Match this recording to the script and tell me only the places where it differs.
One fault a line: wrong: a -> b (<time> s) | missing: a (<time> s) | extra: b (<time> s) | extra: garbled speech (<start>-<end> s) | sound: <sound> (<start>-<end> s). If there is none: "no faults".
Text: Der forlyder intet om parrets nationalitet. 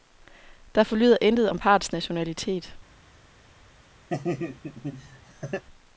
sound: laugh (4.1-5.6 s)